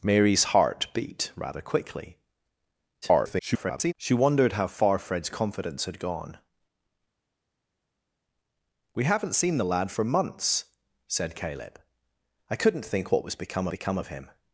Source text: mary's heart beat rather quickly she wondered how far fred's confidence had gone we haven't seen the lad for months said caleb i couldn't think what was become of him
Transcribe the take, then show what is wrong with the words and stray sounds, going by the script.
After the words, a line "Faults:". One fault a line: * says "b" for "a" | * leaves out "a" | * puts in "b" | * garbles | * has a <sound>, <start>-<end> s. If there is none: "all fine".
mary's heart beat rather quickly [garbled] she wondered how far fred's confidence had gone we haven't seen the lad for months said caleb i couldn't think what was become become of him
Faults:
* garbles
* puts in "become"